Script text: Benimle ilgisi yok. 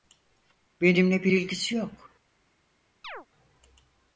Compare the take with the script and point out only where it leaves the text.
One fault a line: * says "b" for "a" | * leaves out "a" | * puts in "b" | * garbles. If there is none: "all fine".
* puts in "bir"